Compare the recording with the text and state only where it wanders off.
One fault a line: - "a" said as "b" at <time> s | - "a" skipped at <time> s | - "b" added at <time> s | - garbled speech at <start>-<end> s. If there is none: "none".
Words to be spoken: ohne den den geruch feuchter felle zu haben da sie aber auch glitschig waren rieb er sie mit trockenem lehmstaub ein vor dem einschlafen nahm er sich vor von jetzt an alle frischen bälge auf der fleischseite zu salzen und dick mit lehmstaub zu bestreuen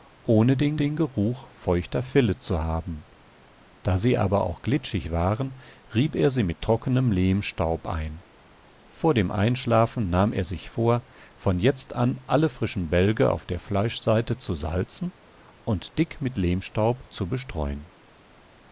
none